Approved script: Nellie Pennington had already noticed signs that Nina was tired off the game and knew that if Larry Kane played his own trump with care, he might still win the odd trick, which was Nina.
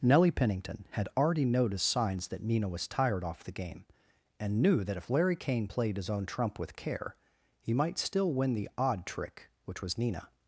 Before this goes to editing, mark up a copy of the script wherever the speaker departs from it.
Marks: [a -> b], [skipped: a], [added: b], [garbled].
Nellie Pennington had already noticed signs that Nina was tired off the game and knew that if Larry Kane played his own trump with care, he might still win the odd trick, which was Nina.